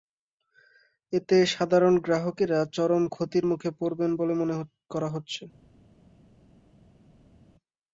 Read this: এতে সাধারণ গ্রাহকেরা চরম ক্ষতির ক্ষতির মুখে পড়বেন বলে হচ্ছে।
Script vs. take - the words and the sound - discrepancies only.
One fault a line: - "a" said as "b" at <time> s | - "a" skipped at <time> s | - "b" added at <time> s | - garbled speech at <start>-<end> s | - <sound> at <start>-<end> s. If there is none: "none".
- "ক্ষতির" skipped at 3.5 s
- "মনে করা" added at 4.4 s